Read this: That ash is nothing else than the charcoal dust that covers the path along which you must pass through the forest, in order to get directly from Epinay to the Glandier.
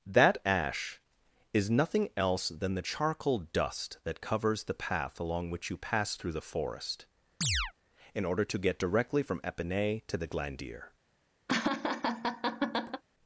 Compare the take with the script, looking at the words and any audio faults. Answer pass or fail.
fail